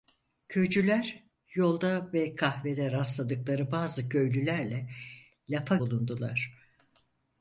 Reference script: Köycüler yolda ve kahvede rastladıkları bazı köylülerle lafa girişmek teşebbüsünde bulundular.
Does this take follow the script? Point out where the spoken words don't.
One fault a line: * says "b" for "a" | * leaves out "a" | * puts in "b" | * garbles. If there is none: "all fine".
* leaves out "girişmek teşebbüsünde"